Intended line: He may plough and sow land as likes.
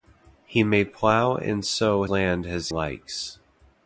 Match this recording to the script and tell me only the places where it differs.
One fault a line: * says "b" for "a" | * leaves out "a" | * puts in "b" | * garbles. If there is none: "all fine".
all fine